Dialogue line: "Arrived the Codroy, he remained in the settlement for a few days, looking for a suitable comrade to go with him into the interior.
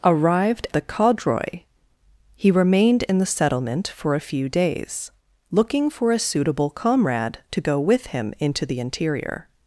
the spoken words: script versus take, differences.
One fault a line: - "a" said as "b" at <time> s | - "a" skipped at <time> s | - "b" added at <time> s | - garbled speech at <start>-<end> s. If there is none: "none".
none